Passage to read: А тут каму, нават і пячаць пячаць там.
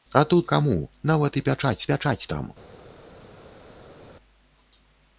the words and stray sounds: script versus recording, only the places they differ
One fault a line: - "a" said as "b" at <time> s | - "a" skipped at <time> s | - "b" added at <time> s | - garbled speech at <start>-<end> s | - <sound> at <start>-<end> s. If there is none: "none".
none